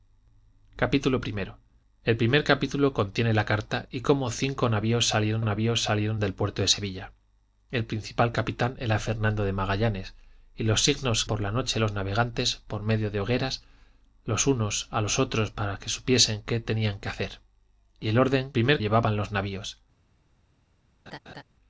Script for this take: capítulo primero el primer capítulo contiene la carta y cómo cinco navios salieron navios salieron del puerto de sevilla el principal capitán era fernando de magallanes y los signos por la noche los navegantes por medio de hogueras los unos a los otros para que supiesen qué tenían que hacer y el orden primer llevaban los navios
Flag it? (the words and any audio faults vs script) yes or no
yes